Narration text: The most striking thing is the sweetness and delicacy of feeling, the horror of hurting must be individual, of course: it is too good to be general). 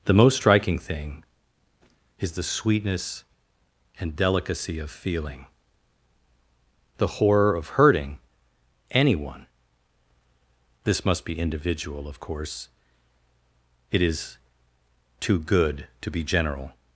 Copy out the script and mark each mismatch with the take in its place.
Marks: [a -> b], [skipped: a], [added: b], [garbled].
The most striking thing is the sweetness and delicacy of feeling, the horror of hurting [added: anyone this] must be individual, of course: it is too good to be general).